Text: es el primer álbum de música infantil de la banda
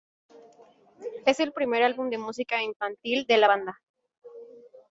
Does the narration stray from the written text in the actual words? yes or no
no